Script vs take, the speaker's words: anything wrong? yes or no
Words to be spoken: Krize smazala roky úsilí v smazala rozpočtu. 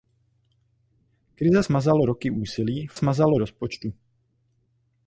no